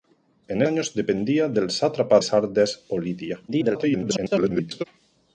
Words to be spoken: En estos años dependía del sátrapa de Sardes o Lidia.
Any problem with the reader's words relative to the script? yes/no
yes